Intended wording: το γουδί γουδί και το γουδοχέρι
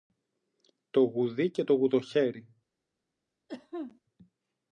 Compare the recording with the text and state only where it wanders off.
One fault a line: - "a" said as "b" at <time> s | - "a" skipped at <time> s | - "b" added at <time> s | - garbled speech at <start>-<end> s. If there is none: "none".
- "γουδί" skipped at 1.5 s